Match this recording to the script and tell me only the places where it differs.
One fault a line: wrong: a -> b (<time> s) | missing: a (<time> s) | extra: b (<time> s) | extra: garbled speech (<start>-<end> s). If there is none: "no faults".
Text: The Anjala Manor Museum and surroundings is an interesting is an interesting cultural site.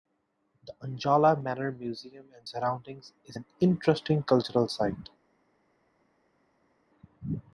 missing: is an interesting (4.2 s)